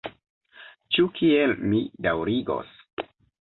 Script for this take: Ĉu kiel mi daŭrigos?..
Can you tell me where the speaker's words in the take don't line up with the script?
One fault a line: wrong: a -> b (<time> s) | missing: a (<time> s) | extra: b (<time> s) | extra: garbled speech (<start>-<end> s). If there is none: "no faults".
no faults